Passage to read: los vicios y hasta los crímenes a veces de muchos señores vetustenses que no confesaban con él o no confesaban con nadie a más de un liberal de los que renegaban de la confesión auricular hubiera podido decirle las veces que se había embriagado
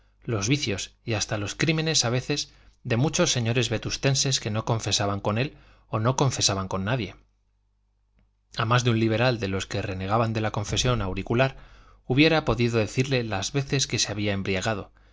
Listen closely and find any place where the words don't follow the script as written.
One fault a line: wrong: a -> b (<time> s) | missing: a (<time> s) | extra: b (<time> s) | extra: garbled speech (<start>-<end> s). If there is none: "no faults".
no faults